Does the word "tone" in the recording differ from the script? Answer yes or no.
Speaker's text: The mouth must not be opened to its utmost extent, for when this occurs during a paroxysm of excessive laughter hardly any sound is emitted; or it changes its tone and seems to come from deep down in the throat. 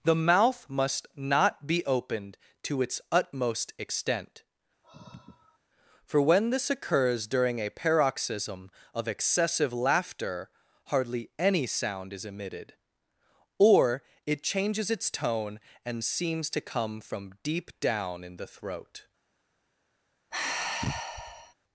no